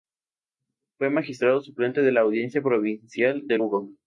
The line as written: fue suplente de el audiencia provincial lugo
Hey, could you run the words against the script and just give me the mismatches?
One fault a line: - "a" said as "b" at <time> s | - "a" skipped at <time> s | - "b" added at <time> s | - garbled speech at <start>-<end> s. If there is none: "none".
- "magistrado" added at 1.1 s
- "el" said as "la" at 2.1 s
- "de" added at 3.4 s